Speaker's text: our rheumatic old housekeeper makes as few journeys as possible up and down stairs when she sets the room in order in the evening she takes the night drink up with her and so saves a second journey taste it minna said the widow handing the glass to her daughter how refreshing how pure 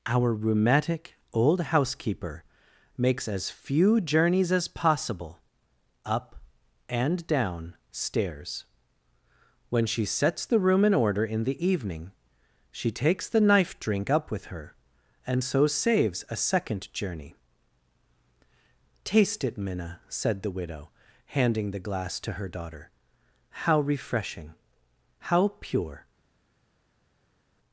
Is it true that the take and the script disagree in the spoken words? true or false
true